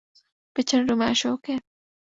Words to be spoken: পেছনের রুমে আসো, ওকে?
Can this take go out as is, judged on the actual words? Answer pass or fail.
pass